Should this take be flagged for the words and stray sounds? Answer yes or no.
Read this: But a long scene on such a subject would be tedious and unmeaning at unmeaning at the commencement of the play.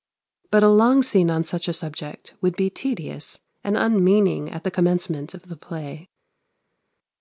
yes